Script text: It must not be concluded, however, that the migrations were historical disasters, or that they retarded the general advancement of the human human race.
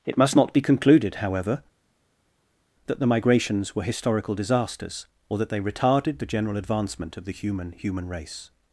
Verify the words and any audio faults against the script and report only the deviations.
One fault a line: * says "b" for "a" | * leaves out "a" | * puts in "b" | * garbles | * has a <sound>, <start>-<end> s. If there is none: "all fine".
all fine